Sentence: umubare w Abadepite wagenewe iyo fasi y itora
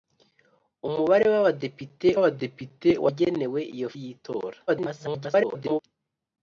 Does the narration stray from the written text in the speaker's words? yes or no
yes